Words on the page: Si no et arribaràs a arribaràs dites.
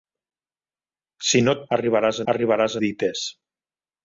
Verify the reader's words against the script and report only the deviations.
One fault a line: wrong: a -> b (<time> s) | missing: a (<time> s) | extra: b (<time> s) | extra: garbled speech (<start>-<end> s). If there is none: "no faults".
no faults